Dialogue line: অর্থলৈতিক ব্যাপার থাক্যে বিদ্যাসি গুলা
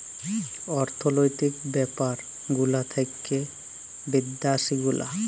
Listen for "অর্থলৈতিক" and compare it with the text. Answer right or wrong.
right